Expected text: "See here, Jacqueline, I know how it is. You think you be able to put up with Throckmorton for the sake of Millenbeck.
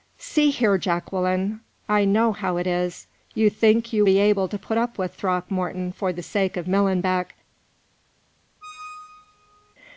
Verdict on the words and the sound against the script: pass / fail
fail